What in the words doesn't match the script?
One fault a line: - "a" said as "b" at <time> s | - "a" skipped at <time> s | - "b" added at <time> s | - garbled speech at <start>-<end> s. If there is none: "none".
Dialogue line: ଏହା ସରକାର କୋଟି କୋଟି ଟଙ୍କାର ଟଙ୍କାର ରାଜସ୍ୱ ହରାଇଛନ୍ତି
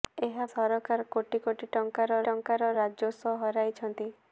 none